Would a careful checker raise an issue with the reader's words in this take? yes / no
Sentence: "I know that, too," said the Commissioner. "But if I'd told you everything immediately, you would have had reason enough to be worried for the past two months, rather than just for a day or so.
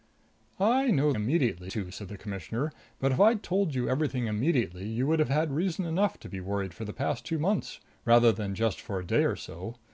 yes